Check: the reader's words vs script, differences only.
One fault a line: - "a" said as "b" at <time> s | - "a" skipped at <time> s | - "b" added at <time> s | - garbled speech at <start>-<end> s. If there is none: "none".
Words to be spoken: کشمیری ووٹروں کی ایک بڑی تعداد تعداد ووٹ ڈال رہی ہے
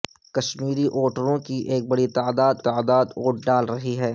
none